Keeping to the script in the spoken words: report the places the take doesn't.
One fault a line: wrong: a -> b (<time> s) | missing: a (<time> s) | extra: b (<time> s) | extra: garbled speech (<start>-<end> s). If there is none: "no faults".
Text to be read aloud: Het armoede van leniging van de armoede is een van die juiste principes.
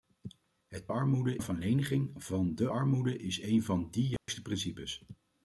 no faults